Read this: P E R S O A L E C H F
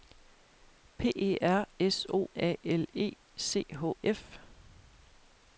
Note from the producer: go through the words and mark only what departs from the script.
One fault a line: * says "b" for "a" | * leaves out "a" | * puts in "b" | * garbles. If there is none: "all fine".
all fine